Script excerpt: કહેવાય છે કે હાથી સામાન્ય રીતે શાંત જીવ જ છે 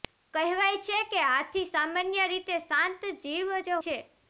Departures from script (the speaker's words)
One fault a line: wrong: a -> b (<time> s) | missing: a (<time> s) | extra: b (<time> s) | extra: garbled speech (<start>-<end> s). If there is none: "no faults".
no faults